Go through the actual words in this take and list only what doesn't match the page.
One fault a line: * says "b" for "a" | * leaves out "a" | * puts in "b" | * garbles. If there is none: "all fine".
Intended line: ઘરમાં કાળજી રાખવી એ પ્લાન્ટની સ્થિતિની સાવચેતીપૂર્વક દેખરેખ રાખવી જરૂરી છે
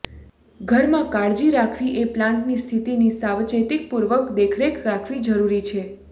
all fine